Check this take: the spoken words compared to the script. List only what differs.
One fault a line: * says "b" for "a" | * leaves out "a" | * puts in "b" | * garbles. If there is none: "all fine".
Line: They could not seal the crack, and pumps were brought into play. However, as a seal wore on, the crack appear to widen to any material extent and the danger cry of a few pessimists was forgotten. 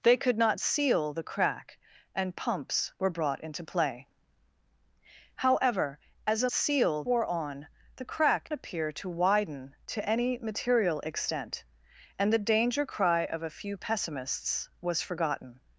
all fine